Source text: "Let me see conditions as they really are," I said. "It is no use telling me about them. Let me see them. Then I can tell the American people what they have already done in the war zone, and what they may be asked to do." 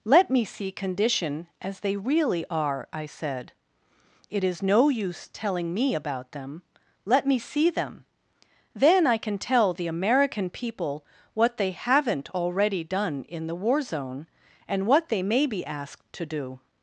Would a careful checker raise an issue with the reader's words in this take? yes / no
yes